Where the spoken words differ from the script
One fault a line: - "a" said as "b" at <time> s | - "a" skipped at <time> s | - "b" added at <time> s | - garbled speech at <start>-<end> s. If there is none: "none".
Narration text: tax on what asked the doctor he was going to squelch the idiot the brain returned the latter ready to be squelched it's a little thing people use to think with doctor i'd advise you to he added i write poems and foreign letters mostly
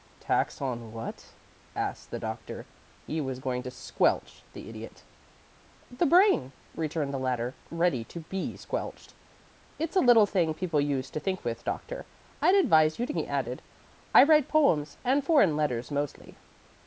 none